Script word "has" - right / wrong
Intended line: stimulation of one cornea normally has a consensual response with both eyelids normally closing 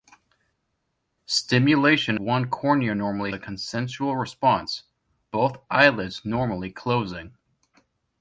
wrong